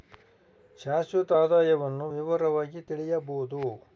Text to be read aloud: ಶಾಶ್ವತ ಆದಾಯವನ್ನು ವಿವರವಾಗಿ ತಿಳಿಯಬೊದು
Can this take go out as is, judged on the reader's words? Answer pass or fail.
pass